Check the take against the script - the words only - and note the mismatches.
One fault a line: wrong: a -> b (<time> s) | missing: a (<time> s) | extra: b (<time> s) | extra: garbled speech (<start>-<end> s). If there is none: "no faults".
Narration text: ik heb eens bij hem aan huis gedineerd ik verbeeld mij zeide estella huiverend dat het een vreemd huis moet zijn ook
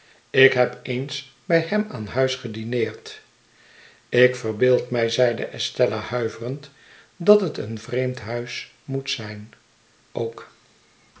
no faults